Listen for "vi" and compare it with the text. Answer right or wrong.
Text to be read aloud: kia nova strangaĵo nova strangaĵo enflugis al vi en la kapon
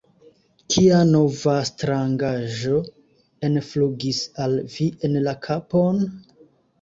right